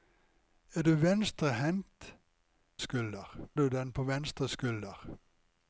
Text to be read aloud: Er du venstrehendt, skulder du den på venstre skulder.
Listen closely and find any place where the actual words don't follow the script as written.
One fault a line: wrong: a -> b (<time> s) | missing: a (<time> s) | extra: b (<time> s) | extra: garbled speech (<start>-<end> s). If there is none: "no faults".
no faults